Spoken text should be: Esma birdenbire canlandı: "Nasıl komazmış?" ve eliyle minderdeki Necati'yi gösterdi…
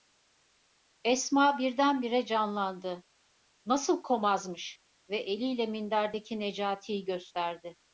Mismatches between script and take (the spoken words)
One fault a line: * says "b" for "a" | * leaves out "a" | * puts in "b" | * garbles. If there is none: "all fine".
all fine